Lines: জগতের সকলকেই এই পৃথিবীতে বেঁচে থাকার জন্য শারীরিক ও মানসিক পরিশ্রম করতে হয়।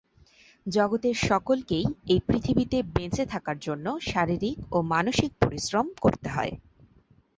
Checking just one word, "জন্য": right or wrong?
right